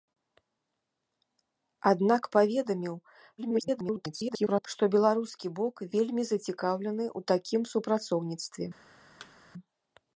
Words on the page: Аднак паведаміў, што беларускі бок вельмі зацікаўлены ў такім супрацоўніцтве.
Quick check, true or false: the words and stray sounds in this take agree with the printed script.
false